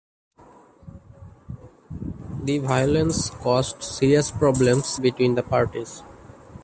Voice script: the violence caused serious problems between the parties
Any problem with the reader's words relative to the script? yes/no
no